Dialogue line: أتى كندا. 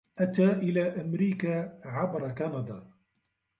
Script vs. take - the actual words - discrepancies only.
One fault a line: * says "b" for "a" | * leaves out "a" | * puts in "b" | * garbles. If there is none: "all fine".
* puts in "إلى أمريكا عبر"